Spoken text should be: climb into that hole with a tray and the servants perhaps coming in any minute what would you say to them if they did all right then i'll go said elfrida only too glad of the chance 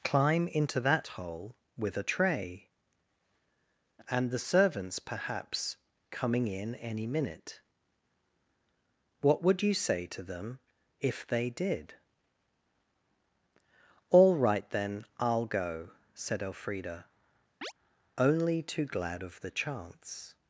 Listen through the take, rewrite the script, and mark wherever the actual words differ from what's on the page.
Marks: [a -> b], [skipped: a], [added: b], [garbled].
climb into that hole with a tray and the servants perhaps coming in any minute what would you say to them if they did all right then i'll go said elfrida only too glad of the chance